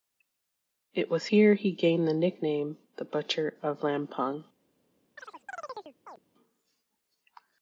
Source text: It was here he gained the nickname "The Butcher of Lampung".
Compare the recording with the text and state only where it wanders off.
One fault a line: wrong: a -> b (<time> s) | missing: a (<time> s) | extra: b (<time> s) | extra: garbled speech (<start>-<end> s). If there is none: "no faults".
no faults